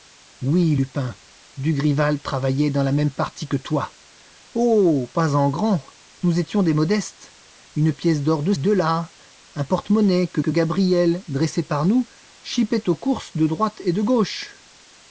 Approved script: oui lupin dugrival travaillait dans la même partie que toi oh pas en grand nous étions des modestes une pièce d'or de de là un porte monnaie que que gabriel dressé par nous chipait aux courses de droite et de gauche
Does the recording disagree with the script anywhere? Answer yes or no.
no